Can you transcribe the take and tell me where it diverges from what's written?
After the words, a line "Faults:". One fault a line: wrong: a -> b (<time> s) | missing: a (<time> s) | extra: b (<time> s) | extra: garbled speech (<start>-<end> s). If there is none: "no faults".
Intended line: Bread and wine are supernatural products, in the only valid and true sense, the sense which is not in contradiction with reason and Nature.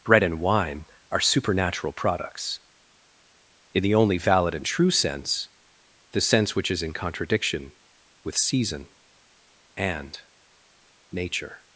Bread and wine are supernatural products, in the only valid and true sense, the sense which is in contradiction with season and Nature.
Faults:
missing: not (6.8 s)
wrong: reason -> season (8.4 s)